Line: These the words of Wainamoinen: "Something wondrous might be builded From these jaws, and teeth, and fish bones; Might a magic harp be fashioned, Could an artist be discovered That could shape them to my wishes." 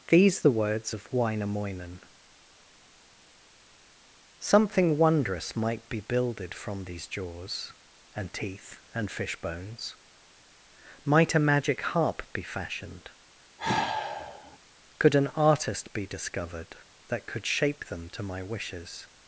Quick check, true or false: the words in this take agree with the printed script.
true